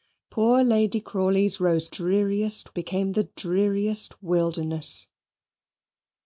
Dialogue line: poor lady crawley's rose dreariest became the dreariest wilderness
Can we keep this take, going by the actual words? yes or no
yes